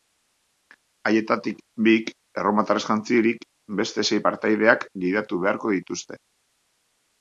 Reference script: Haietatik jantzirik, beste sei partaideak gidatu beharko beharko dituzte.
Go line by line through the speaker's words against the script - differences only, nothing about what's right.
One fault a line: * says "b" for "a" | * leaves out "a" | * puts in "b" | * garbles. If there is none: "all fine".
* puts in "bik erromatarrez"
* leaves out "beharko"